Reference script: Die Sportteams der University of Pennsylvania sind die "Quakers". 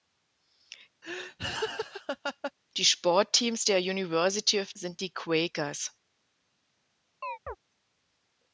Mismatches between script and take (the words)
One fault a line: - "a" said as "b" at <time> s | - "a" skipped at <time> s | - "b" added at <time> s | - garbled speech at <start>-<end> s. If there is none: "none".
- "Pennsylvania" skipped at 4.8 s